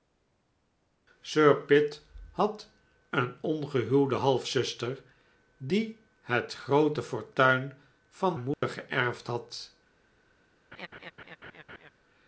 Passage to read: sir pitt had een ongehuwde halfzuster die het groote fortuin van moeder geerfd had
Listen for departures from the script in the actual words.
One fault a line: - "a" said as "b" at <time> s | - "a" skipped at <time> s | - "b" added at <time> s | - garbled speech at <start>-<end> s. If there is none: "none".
none